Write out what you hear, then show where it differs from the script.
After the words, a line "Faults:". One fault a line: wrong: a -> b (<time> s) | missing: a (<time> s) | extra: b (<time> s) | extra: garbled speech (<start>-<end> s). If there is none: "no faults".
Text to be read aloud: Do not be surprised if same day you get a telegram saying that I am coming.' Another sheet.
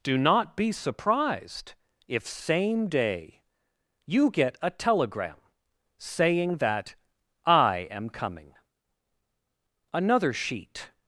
Do not be surprised if same day you get a telegram saying that I am coming.' Another sheet.
Faults:
no faults